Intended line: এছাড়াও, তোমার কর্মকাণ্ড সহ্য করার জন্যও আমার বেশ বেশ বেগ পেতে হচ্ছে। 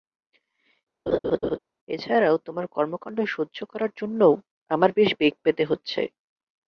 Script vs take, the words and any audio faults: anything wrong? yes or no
yes